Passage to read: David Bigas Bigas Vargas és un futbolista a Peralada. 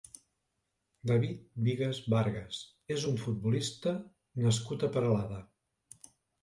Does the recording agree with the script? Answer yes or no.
no